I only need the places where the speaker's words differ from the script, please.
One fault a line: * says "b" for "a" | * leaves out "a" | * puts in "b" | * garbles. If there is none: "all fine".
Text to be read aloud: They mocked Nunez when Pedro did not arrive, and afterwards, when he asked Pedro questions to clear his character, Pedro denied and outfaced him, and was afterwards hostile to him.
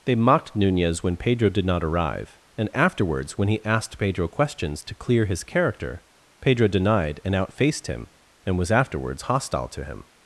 all fine